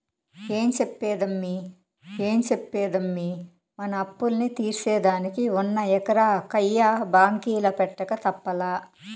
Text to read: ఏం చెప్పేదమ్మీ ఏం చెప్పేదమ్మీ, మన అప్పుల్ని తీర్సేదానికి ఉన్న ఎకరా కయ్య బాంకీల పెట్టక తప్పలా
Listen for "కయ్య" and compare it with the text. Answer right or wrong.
right